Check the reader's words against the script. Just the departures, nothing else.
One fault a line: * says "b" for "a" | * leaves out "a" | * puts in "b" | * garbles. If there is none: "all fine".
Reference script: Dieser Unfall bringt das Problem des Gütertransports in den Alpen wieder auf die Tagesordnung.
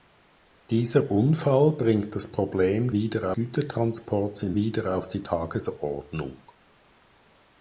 * says "wieder" for "des"
* leaves out "den Alpen"